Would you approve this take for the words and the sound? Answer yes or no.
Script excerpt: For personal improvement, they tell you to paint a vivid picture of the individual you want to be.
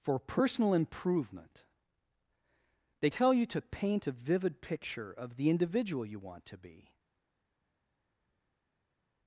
yes